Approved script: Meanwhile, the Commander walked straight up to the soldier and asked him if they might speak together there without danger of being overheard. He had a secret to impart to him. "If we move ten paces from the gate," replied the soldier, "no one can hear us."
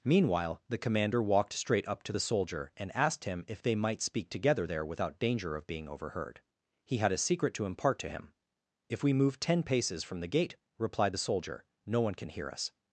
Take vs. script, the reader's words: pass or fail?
pass